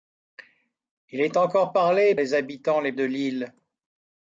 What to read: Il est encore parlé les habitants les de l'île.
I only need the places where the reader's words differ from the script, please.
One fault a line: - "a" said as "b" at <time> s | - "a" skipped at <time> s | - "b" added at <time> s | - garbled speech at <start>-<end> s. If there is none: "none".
none